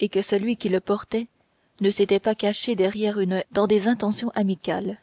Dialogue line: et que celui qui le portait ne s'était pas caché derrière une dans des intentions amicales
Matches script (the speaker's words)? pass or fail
pass